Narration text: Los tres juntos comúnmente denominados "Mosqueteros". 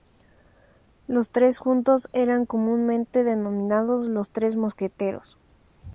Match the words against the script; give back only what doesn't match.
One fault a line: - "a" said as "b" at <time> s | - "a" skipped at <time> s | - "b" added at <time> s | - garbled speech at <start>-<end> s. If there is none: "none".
- "eran" added at 2.1 s
- "Los Tres" added at 4.1 s